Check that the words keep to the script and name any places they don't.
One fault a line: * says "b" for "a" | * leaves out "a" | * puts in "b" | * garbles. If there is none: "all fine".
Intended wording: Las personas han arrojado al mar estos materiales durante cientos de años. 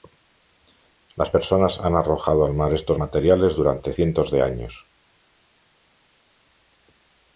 all fine